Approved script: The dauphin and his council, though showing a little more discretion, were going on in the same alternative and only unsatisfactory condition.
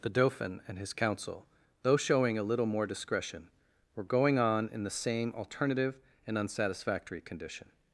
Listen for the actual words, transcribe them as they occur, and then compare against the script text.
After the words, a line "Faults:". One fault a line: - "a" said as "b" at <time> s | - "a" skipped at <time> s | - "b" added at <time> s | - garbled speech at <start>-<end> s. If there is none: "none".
The dauphin and his council, though showing a little more discretion, were going on in the same alternative and unsatisfactory condition.
Faults:
- "only" skipped at 6.4 s